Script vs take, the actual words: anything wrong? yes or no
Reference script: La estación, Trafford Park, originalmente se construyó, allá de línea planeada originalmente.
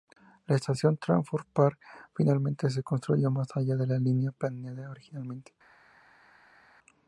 yes